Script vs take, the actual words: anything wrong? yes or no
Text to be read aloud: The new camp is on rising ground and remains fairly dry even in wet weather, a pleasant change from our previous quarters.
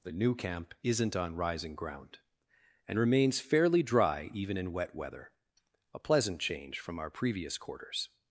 yes